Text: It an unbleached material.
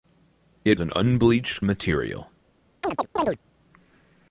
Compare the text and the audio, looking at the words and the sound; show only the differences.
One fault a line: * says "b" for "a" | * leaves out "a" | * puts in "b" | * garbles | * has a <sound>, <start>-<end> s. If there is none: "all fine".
* has a chirp, 2.8-3.4 s